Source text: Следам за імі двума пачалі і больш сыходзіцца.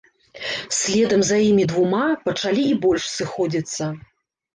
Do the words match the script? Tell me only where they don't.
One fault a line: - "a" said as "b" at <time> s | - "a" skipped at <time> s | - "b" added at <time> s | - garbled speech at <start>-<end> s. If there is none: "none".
none